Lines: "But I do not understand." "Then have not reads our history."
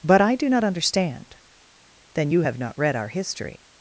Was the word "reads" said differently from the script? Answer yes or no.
yes